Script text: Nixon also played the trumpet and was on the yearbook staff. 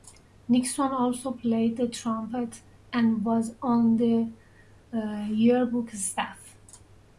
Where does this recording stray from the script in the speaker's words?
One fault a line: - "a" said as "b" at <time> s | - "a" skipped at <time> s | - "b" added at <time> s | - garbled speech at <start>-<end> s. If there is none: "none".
none